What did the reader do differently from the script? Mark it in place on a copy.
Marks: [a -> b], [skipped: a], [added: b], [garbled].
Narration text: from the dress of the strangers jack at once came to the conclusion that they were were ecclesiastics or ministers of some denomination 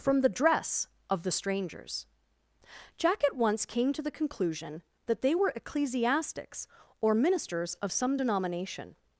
from the dress of the strangers jack at once came to the conclusion that they were [skipped: were] ecclesiastics or ministers of some denomination